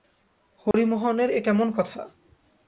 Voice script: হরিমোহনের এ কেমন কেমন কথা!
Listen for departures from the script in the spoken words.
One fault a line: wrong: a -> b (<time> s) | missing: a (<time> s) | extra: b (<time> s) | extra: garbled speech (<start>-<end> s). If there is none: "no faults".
missing: কেমন (1.7 s)